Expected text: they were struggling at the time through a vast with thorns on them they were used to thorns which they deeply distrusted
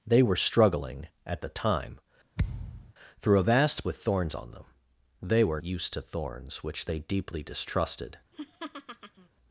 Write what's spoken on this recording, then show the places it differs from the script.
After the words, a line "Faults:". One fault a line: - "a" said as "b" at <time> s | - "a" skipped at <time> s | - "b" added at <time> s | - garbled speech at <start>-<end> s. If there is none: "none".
they were struggling at the time through a vast with thorns on them they were used to thorns which they deeply distrusted
Faults:
none